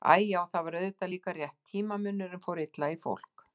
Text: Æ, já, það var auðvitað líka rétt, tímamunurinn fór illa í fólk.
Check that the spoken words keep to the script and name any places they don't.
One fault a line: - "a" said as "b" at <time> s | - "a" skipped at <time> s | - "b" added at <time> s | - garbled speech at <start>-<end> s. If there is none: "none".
none